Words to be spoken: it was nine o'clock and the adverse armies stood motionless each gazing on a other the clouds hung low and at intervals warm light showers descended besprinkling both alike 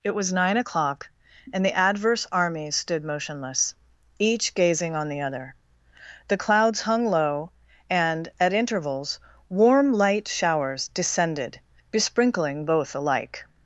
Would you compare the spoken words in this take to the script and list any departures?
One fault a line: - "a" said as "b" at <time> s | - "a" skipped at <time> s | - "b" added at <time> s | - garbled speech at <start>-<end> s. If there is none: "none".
- "a" said as "the" at 5.1 s